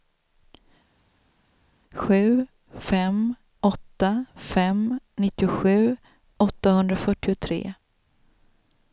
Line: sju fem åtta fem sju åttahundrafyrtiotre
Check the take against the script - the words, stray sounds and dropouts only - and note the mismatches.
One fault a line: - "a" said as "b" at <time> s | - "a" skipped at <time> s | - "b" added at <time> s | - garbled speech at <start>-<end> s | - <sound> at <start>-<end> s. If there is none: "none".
- "sju" said as "nittiosju" at 5.2 s